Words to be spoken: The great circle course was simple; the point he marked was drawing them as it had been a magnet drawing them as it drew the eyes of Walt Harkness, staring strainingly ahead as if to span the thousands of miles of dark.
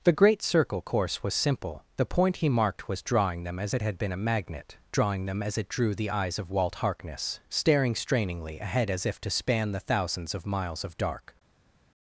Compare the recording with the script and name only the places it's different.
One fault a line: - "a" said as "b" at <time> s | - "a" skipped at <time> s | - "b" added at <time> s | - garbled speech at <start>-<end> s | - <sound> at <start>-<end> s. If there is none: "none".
none